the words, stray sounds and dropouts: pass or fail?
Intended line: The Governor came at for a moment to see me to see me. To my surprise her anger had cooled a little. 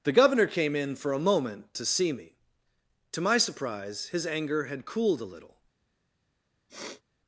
fail